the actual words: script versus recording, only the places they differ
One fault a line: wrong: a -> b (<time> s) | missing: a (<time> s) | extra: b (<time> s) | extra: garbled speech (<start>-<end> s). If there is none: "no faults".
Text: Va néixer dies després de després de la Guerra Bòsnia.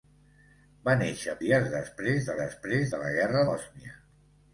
no faults